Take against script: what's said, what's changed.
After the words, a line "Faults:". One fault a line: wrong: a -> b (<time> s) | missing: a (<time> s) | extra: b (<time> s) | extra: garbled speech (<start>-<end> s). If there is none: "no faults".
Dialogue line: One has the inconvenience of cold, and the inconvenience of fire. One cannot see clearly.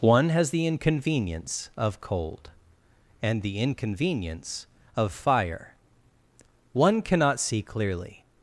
One has the inconvenience of cold, and the inconvenience of fire. One cannot see clearly.
Faults:
no faults